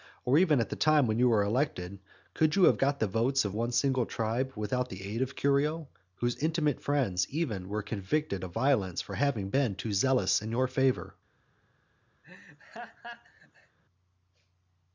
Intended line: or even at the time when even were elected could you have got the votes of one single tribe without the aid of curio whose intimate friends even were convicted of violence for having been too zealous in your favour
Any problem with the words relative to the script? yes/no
yes